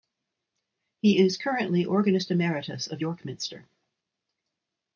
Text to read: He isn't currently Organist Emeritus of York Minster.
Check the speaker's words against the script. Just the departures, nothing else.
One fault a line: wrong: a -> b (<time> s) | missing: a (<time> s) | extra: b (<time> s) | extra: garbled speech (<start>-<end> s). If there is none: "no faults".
wrong: isn't -> is (1.2 s)